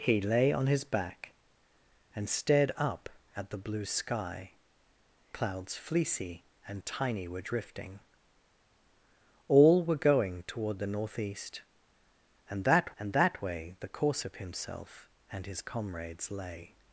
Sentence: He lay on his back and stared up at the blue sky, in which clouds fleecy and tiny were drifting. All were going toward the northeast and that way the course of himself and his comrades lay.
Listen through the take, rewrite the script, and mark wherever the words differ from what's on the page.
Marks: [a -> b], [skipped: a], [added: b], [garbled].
He lay on his back and stared up at the blue sky, [skipped: in which] clouds fleecy and tiny were drifting. All were going toward the northeast and that [added: and that] way the course of himself and his comrades lay.